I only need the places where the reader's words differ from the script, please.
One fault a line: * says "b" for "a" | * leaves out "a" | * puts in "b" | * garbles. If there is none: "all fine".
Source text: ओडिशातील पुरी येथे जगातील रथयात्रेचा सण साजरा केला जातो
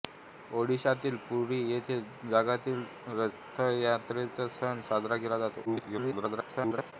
* garbles